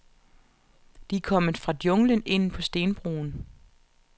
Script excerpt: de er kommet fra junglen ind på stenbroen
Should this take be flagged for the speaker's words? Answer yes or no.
no